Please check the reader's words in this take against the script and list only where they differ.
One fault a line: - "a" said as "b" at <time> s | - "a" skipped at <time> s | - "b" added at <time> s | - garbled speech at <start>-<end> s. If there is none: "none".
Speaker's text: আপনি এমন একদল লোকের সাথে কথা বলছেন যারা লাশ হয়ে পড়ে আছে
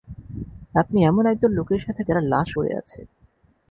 - "কথা বলছেন" skipped at 2.0 s
- "হয়ে" skipped at 2.5 s